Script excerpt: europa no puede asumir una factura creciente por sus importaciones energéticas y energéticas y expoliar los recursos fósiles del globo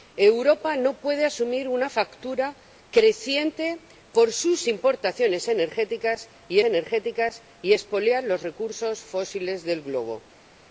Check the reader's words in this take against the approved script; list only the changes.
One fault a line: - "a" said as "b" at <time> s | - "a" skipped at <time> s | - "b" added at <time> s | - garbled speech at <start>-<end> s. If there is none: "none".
none